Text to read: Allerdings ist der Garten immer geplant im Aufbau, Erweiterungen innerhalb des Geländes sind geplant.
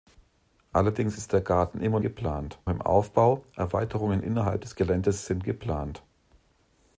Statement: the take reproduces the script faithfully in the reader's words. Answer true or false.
true